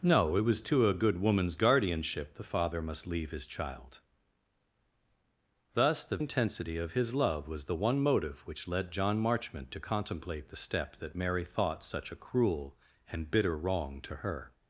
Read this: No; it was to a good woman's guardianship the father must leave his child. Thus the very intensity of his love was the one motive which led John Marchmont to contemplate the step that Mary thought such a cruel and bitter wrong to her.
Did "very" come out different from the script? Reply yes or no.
yes